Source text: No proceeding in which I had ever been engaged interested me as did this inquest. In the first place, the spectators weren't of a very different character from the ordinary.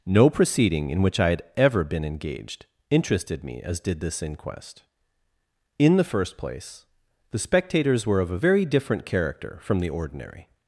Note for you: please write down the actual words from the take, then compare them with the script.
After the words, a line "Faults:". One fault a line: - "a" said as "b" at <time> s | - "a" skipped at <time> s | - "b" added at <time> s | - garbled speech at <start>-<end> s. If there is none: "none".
No proceeding in which I had ever been engaged interested me as did this inquest. In the first place, the spectators were of a very different character from the ordinary.
Faults:
- "weren't" said as "were" at 8.1 s